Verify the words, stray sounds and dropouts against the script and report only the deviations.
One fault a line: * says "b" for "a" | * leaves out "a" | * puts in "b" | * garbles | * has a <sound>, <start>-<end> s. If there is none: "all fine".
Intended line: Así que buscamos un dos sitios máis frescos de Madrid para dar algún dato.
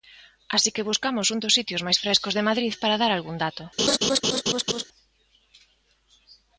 * has a laugh, 3.8-4.8 s